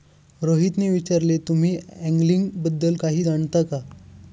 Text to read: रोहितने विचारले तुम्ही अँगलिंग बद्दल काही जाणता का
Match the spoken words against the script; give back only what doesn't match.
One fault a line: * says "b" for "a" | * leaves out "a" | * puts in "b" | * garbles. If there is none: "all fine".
all fine